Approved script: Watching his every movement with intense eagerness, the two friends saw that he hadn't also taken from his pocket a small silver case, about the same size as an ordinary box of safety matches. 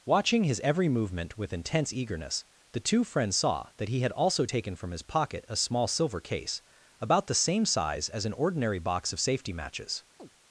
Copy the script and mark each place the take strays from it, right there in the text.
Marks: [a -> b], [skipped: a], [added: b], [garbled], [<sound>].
Watching his every movement with intense eagerness, the two friends saw that he [hadn't -> had] also taken from his pocket a small silver case, about the same size as an ordinary box of safety matches. [chirp]